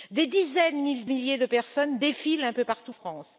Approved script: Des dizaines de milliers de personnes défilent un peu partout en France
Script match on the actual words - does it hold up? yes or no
no